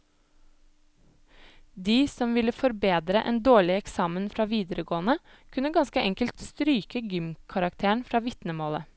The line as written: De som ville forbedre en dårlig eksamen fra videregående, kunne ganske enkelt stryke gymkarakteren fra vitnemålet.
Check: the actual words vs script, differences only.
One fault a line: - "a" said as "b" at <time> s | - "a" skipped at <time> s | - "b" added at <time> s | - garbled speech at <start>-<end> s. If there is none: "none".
none